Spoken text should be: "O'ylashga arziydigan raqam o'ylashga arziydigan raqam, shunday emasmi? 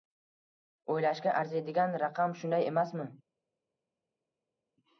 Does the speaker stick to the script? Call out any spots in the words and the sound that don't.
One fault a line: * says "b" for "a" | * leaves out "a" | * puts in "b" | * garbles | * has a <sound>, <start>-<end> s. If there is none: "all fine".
* leaves out "o'ylashga arziydigan raqam"